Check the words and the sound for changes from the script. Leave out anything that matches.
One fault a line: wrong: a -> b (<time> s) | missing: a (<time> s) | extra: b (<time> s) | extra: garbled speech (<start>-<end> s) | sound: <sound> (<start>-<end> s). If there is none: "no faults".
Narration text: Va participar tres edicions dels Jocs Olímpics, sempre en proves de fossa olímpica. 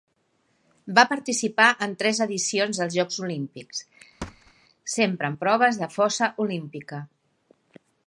extra: en (1.9 s)
sound: thud (4.2-4.5 s)